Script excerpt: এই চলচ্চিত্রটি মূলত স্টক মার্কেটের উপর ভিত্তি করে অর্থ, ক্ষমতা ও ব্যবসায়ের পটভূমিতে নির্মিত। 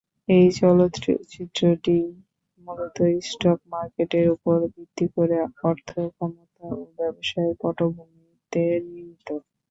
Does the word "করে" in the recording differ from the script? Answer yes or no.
no